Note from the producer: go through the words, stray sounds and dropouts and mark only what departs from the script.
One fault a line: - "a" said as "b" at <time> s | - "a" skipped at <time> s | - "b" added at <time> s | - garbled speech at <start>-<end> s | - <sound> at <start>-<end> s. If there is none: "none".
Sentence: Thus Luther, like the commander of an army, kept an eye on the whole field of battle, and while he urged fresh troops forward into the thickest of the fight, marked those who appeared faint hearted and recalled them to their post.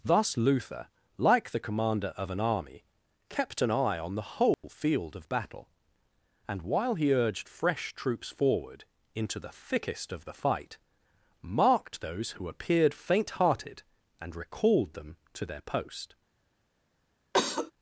- dropout at 4.5-4.6 s
- cough at 17.3-17.7 s